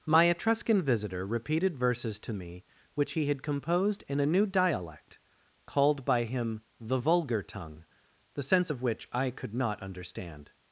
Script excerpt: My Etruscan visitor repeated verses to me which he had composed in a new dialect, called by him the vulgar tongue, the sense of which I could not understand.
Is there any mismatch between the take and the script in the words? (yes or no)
no